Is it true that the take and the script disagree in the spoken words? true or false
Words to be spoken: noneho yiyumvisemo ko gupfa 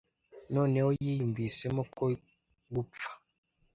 false